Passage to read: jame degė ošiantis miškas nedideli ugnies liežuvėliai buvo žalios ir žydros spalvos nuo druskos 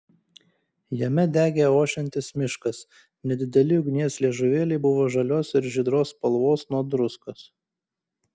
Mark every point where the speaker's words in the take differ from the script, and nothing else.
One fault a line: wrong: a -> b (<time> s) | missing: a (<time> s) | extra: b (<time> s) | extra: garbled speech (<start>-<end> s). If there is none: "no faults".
no faults